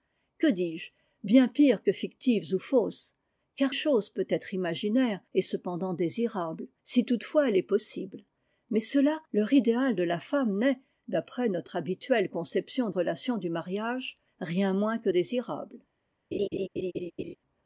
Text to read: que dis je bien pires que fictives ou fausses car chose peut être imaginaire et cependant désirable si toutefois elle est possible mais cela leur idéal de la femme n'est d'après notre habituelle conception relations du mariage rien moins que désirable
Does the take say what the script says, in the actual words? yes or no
yes